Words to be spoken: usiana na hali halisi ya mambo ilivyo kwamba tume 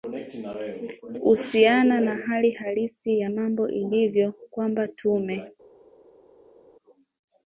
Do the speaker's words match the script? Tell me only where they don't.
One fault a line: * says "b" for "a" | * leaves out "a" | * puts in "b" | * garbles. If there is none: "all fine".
all fine